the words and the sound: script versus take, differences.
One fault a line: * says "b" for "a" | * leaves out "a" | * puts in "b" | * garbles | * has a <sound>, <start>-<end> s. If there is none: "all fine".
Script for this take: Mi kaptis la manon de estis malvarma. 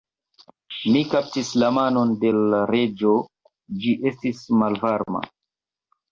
* puts in "l Reĝo ĝi"